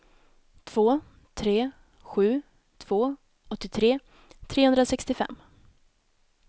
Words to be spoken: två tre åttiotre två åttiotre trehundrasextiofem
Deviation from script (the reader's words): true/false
true